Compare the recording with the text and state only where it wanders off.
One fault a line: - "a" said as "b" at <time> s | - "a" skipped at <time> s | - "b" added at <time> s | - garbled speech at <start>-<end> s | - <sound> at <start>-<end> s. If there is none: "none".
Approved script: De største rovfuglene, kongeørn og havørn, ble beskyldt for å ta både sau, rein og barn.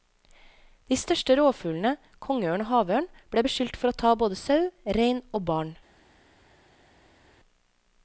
none